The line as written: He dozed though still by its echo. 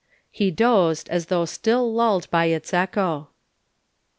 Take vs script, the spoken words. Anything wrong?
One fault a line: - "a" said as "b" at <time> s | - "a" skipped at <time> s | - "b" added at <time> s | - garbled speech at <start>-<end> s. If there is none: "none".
- "as" added at 1.1 s
- "lulled" added at 1.9 s